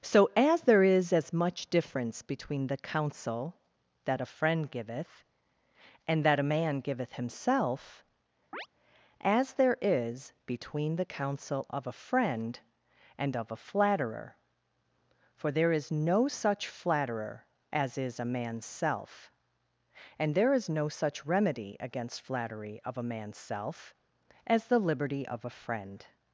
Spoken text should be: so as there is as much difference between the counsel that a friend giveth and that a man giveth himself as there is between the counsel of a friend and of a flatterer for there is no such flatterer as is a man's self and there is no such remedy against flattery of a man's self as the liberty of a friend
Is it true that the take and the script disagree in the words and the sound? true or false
true